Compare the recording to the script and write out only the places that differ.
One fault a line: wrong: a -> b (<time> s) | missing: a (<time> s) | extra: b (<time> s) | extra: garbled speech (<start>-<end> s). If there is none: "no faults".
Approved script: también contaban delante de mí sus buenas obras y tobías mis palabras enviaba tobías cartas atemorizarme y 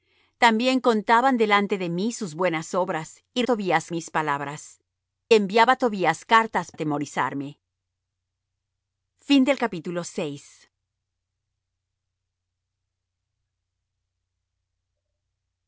no faults